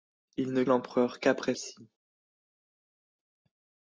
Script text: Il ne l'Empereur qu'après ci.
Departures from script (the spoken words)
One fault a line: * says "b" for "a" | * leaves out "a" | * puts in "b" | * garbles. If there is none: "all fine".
all fine